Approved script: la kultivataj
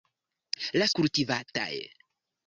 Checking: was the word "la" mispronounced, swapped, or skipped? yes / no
no